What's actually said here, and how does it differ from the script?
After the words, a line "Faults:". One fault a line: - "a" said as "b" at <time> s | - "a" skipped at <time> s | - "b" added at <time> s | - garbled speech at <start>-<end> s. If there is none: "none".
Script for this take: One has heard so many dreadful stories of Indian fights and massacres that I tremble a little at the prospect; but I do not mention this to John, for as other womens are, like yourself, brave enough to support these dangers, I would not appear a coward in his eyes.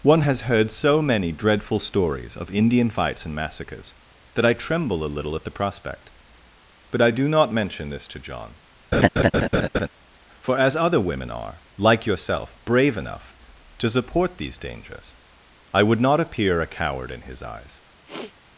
One has heard so many dreadful stories of Indian fights and massacres that I tremble a little at the prospect; but I do not mention this to John, for as other women are, like yourself, brave enough to support these dangers, I would not appear a coward in his eyes.
Faults:
- "womens" said as "women" at 11.0 s